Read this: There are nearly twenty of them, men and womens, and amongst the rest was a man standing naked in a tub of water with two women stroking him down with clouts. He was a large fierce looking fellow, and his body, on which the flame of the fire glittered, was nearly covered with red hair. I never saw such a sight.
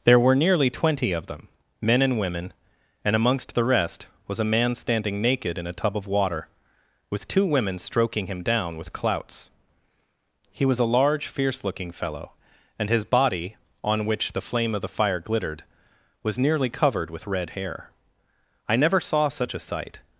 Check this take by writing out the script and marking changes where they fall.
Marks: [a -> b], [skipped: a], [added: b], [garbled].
There [are -> were] nearly twenty of them, men and [womens, -> women] and amongst the rest was a man standing naked in a tub of water with two women stroking him down with clouts. He was a large fierce looking fellow, and his body, on which the flame of the fire glittered, was nearly covered with red hair. I never saw such a sight.